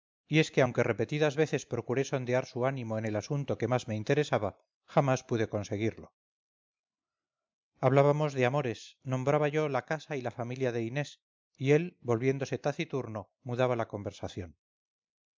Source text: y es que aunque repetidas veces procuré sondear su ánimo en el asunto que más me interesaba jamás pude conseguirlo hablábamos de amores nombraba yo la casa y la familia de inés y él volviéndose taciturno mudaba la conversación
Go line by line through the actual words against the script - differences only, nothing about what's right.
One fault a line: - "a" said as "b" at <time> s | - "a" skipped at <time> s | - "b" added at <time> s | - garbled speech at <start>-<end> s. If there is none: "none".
none